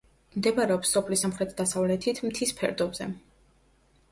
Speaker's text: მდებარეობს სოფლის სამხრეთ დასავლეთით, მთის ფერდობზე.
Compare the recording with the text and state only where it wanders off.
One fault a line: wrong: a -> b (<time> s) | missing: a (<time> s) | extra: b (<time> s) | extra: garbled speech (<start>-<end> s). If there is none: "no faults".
no faults